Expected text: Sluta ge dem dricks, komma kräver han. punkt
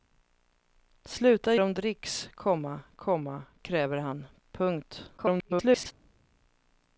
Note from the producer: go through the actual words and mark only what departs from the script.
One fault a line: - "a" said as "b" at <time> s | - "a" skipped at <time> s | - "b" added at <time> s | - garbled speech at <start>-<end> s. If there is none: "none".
- "ge" skipped at 1.6 s
- "komma" added at 2.9 s
- garbled speech at 5.2-5.9 s